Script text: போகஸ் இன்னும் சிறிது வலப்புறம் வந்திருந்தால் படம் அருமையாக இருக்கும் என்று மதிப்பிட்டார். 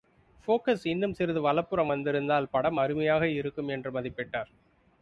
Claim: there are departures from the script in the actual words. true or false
false